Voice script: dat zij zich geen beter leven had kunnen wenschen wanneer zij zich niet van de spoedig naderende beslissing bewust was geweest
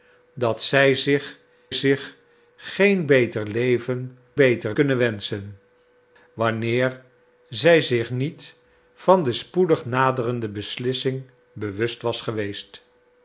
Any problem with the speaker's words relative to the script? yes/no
yes